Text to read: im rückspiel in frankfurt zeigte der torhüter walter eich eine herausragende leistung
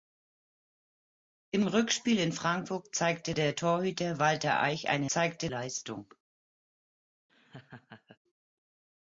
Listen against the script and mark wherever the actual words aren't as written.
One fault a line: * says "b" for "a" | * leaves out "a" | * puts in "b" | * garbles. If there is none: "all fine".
* says "zeigte" for "herausragende"